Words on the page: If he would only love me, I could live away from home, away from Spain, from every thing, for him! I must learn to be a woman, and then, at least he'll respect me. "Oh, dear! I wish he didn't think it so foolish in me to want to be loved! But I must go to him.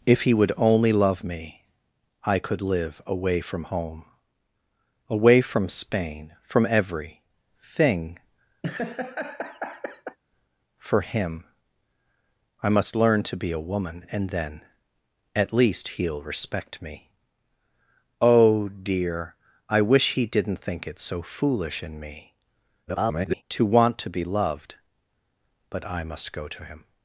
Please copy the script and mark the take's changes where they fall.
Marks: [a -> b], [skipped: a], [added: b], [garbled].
If he would only love me, I could live away from home, away from Spain, from every thing, for him! I must learn to be a woman, and then, at least he'll respect me. "Oh, dear! I wish he didn't think it so foolish in me [garbled] to want to be loved! But I must go to him.